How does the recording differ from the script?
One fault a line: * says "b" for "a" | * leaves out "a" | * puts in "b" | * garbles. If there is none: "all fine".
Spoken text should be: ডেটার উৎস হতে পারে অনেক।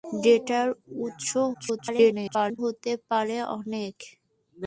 * garbles